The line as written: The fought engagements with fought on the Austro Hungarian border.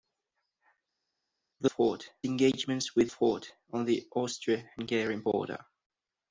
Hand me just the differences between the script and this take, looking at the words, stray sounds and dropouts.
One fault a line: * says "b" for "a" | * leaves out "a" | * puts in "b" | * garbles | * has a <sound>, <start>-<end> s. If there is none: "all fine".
all fine